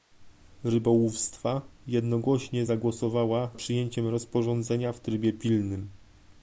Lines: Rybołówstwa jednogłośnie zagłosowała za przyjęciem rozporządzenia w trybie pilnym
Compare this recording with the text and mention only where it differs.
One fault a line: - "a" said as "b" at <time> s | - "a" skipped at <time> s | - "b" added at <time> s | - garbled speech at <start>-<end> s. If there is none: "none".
- "za" skipped at 3.5 s